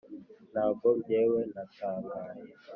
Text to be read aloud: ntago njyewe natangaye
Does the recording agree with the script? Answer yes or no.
yes